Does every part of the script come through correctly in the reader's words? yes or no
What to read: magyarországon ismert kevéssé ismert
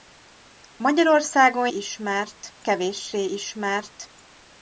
yes